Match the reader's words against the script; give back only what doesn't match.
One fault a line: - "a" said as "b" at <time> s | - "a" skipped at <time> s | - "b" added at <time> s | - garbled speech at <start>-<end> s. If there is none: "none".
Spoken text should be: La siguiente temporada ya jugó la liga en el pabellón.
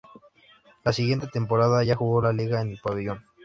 none